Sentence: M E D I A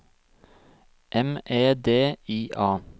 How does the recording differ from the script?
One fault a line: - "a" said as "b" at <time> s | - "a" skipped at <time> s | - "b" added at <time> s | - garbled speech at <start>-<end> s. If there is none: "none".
none